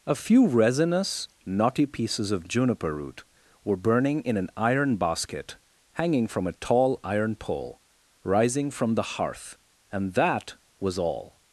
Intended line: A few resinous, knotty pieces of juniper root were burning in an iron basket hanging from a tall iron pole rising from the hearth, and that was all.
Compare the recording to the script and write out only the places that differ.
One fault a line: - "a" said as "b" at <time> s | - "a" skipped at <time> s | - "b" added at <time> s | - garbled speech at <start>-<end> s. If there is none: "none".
none